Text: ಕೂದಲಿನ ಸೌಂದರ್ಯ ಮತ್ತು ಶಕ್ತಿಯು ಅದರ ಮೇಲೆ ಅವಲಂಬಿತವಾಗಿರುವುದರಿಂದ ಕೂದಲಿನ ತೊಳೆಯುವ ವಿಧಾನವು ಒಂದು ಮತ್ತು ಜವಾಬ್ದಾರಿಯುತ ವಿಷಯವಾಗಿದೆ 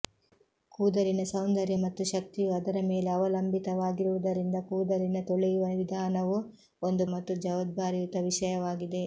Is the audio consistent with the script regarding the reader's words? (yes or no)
yes